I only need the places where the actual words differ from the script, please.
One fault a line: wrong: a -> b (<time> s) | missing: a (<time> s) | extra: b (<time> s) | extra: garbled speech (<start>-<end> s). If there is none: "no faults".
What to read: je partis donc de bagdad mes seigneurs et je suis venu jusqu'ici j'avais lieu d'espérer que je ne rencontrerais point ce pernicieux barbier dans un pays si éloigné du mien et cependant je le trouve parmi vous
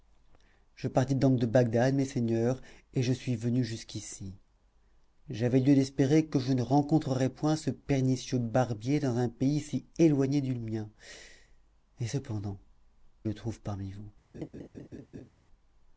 missing: je (12.6 s)